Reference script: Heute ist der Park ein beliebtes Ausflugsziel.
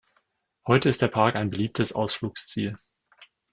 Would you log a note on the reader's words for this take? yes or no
no